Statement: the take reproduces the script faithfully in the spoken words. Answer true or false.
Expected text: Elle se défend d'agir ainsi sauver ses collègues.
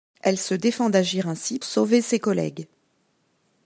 true